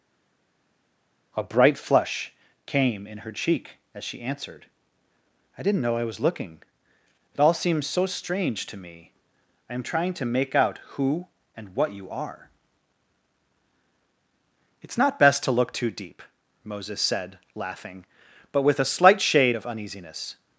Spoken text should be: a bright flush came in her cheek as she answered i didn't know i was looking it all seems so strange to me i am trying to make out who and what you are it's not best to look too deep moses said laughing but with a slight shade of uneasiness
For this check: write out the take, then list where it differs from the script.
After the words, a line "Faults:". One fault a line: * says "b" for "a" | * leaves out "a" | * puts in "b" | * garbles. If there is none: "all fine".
a bright flush came in her cheek as she answered i didn't know i was looking it all seems so strange to me i am trying to make out who and what you are it's not best to look too deep moses said laughing but with a slight shade of uneasiness
Faults:
all fine